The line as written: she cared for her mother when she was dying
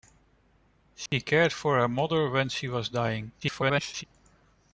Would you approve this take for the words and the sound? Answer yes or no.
no